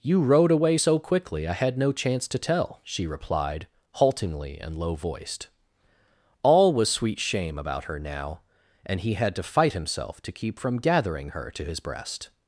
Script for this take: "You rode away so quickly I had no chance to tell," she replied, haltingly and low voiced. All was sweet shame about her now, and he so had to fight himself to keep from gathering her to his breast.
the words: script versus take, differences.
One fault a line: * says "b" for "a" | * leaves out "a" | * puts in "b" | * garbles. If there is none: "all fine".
* leaves out "so"